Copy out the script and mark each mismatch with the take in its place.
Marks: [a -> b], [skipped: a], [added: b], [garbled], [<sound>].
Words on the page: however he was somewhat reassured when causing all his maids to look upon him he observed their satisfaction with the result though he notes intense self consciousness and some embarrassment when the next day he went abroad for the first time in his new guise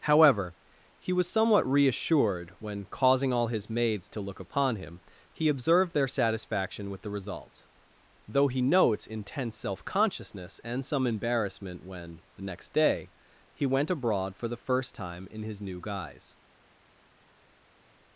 however he was somewhat reassured when causing all his maids to look upon him he observed their satisfaction with the result though he notes intense self consciousness and some embarrassment when the next day he went abroad for the first time in his new guise